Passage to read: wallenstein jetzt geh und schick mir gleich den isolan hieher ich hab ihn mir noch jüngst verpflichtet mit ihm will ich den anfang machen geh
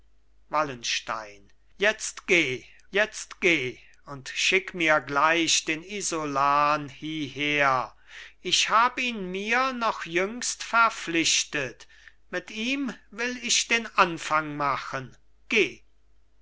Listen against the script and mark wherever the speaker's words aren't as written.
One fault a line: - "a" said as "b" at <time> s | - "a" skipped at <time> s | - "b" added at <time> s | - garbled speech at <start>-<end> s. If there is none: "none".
- "jetzt geh" added at 2.9 s